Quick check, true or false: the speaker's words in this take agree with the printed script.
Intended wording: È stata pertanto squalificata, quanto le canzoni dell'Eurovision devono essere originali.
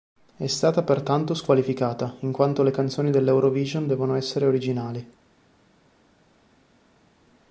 false